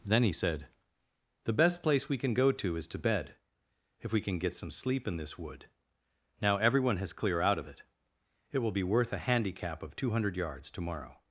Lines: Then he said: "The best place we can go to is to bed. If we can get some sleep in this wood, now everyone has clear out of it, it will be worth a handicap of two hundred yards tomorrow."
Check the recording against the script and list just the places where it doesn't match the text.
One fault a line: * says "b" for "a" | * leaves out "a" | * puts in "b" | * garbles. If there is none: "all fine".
all fine